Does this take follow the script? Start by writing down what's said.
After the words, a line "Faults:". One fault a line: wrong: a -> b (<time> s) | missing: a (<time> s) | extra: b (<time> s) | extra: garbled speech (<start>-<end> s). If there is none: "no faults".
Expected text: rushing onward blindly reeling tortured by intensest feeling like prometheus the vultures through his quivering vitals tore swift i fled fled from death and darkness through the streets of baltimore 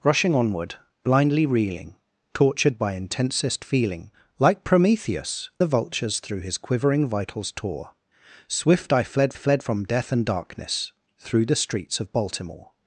rushing onward blindly reeling tortured by intensest feeling like prometheus the vultures through his quivering vitals tore swift i fled fled from death and darkness through the streets of baltimore
Faults:
no faults